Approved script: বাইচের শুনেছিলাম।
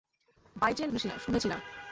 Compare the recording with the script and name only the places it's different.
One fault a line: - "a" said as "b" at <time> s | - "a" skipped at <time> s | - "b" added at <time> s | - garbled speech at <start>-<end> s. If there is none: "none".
none